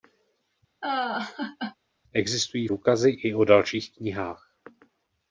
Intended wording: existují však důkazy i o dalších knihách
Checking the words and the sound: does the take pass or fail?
fail